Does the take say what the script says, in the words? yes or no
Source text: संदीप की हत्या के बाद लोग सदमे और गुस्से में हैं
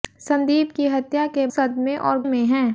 no